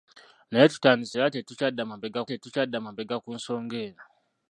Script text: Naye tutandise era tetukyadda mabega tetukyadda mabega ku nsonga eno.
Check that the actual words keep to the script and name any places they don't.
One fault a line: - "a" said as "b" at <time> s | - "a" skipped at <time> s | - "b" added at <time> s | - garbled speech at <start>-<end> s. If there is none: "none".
none